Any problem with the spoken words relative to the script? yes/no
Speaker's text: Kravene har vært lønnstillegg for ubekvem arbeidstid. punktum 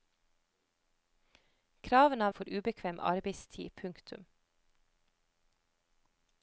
yes